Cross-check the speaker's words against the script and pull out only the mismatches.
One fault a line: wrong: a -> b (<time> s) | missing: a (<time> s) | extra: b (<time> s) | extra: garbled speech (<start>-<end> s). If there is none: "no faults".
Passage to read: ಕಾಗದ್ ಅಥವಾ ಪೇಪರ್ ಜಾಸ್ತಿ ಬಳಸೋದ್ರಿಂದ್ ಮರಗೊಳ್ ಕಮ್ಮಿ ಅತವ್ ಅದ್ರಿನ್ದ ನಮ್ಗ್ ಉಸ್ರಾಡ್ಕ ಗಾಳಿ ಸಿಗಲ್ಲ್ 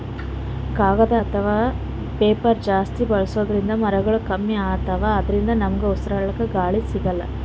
no faults